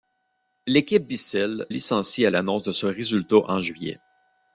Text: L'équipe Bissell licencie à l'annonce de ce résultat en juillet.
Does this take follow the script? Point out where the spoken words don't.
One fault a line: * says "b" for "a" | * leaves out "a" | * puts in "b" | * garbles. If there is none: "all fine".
all fine